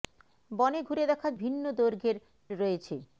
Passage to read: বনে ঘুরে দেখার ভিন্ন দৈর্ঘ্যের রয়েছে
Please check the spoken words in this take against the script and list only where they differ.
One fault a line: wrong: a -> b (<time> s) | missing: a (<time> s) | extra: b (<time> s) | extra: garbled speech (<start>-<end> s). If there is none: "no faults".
no faults